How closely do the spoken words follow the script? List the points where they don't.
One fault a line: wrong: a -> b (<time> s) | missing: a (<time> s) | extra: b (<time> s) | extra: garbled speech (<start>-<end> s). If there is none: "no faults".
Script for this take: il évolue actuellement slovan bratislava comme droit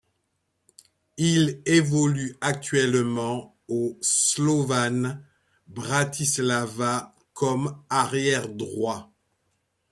extra: au (3.7 s)
extra: arrière (7.9 s)